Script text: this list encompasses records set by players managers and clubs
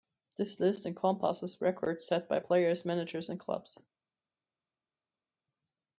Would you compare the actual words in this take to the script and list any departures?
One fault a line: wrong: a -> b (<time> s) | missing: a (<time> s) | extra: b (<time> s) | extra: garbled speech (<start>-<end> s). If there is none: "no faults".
no faults